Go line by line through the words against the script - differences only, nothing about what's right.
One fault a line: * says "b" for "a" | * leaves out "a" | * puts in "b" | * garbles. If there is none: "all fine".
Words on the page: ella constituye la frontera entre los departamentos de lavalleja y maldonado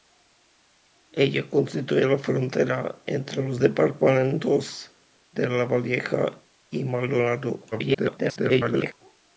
* garbles